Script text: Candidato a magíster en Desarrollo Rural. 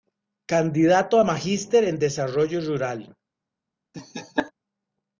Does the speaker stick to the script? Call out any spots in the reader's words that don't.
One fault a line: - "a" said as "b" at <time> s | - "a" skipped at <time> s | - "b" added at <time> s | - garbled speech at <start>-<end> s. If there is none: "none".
none